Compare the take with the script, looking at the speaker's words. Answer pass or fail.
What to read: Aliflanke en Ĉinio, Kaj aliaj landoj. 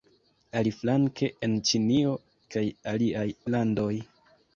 pass